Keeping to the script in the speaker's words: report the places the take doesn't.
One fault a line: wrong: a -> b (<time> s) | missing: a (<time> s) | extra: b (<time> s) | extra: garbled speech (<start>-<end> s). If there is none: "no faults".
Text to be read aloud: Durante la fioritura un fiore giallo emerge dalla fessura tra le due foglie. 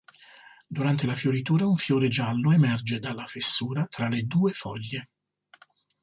no faults